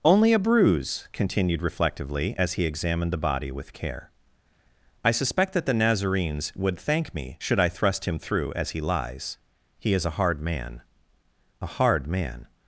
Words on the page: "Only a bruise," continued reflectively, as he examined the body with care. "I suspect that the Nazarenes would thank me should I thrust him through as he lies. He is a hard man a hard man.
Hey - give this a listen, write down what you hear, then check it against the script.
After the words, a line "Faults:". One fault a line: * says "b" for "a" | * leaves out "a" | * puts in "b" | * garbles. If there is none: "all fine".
"Only a bruise," continued reflectively, as he examined the body with care. "I suspect that the Nazarenes would thank me should I thrust him through as he lies. He is a hard man a hard man.
Faults:
all fine